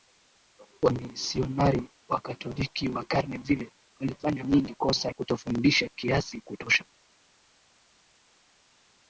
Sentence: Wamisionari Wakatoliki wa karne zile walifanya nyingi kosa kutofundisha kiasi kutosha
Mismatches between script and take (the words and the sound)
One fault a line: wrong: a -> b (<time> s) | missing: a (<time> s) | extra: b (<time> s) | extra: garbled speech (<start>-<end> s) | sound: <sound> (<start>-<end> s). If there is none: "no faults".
no faults